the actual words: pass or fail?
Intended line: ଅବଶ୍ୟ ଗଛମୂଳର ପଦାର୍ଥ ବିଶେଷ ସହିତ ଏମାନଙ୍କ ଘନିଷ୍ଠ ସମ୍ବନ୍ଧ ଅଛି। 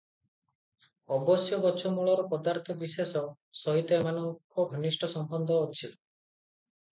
pass